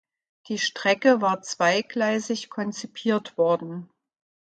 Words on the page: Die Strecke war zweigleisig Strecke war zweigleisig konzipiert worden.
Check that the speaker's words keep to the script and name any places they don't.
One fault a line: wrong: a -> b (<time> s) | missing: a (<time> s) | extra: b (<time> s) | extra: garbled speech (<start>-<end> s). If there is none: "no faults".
missing: Strecke war zweigleisig (2.5 s)